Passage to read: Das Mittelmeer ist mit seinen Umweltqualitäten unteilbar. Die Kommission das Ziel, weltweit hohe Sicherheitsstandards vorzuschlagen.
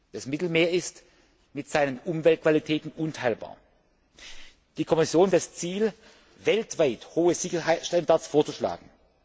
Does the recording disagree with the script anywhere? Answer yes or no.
no